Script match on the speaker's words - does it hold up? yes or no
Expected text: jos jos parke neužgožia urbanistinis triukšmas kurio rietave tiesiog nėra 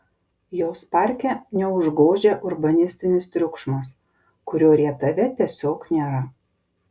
no